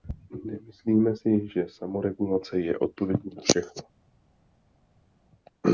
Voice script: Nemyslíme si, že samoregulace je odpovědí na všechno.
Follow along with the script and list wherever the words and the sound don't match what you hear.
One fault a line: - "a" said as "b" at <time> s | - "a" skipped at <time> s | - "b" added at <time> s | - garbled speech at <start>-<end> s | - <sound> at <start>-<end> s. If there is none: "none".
none